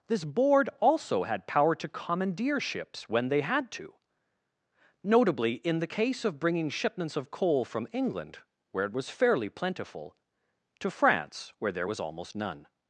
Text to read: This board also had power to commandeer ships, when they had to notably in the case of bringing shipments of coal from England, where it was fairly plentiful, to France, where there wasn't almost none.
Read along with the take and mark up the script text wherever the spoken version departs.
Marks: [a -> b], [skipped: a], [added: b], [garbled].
This board also had power to commandeer ships, when they had to notably in the case of bringing shipments of coal from England, where it was fairly plentiful, to France, where there [wasn't -> was] almost none.